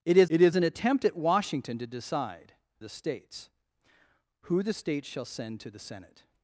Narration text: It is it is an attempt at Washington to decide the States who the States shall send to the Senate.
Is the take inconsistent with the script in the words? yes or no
no